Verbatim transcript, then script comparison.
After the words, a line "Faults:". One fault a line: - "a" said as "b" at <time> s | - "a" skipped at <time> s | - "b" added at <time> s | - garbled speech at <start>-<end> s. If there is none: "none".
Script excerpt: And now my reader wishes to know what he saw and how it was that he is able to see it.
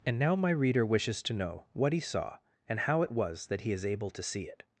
And now my reader wishes to know what he saw and how it was that he is able to see it.
Faults:
none